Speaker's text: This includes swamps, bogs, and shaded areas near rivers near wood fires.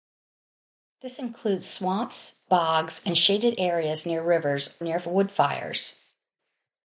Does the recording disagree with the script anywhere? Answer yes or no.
no